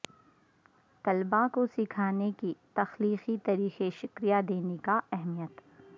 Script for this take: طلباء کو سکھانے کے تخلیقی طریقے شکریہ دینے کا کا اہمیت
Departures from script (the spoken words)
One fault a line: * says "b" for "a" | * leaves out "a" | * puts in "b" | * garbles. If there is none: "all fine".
* leaves out "کا"